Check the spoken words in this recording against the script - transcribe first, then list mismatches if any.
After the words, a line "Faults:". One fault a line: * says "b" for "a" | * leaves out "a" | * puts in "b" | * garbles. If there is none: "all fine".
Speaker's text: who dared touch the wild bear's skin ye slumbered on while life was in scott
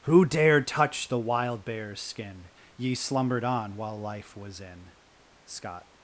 who dared touch the wild bear's skin ye slumbered on while life was in scott
Faults:
all fine